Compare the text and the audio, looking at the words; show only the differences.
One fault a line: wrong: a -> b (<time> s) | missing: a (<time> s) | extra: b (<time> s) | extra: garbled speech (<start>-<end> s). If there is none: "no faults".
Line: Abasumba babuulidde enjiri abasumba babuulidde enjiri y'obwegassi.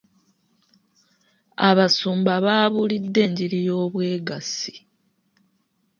missing: abasumba babuulidde enjiri (3.6 s)